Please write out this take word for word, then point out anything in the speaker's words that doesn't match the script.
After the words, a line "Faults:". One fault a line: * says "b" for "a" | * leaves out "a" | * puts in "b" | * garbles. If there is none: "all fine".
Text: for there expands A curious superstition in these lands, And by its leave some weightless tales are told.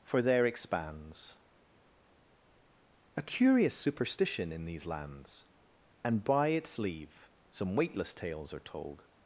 for there expands A curious superstition in these lands, And by its leave some weightless tales are told.
Faults:
all fine